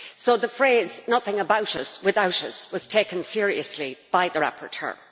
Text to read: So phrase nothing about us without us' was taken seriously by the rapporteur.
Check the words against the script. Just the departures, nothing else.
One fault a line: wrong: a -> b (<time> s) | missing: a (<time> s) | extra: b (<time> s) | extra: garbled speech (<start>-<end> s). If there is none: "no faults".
extra: the (0.3 s)